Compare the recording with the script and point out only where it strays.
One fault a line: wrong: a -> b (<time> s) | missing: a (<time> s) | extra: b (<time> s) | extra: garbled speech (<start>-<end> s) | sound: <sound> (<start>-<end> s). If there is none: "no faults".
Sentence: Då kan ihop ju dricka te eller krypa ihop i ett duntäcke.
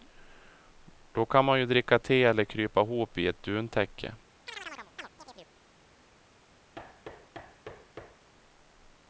wrong: ihop -> man (1.4 s)
sound: chirp (4.5-5.5 s)
sound: thud (6.7-8.3 s)